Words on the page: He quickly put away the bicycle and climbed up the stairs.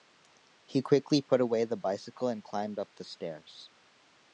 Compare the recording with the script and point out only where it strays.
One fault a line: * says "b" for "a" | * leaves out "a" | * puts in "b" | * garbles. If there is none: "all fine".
all fine